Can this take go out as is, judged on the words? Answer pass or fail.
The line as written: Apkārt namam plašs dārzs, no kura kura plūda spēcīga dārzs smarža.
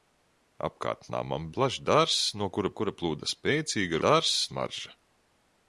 pass